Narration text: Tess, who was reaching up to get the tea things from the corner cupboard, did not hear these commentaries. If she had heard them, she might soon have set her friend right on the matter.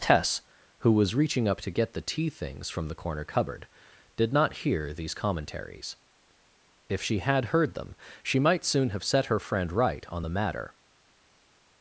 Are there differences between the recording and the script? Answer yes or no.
no